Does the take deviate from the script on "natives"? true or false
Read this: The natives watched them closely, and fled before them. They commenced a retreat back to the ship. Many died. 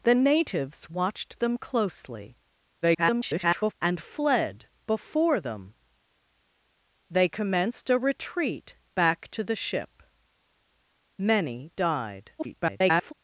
false